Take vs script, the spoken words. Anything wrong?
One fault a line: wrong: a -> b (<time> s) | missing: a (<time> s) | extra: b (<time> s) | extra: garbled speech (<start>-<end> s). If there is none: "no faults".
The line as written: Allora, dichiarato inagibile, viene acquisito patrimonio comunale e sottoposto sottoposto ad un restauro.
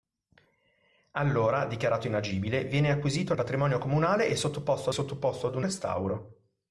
no faults